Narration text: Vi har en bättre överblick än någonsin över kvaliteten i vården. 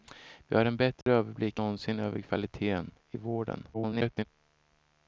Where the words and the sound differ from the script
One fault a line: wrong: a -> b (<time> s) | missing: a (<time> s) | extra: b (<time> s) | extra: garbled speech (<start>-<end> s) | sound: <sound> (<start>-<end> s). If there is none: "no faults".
sound: dropout (1.0-1.1 s)
missing: än (1.6 s)
extra: garbled speech (3.7-4.2 s)